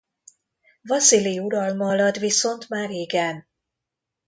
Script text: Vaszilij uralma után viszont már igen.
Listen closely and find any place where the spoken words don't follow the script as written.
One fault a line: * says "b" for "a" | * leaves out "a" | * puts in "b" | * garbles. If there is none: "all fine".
* says "alatt" for "után"